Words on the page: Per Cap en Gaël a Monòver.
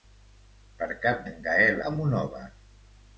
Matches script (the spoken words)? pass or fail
pass